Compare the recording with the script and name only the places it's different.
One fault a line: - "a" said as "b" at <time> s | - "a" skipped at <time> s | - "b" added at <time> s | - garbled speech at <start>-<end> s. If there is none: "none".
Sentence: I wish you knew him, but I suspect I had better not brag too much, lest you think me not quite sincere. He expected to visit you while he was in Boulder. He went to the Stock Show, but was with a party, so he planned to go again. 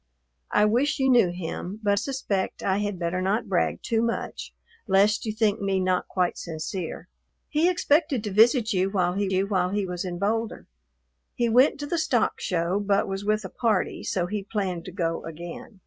- "I" skipped at 2.0 s
- "you while he" added at 9.3 s